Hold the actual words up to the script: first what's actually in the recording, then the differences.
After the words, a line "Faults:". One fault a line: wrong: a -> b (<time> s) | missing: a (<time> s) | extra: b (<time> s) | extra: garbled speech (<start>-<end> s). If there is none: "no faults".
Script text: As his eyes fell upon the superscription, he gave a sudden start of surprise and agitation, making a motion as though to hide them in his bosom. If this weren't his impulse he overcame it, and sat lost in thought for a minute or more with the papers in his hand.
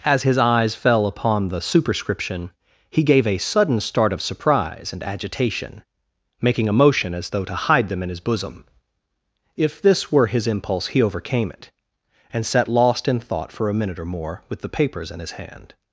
As his eyes fell upon the superscription, he gave a sudden start of surprise and agitation, making a motion as though to hide them in his bosom. If this were his impulse he overcame it, and sat lost in thought for a minute or more with the papers in his hand.
Faults:
wrong: weren't -> were (10.1 s)